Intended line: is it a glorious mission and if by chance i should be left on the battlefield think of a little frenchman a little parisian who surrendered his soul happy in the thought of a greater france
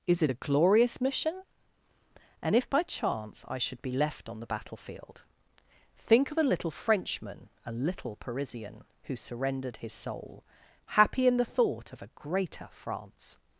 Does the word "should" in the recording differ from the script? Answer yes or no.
no